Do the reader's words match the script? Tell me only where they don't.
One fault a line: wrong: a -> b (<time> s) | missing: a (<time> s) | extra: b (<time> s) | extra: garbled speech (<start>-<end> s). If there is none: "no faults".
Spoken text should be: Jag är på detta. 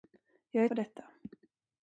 no faults